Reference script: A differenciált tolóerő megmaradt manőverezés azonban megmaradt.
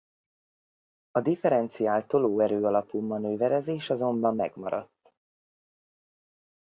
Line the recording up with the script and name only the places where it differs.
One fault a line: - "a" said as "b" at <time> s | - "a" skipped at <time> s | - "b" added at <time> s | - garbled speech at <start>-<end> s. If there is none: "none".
- "megmaradt" said as "alapú" at 2.6 s